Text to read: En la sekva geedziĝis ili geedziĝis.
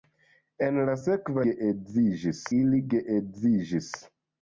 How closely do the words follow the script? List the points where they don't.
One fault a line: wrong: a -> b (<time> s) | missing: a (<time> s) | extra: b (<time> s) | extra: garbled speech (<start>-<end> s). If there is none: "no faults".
no faults